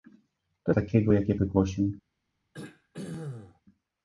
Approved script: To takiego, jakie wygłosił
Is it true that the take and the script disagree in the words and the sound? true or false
true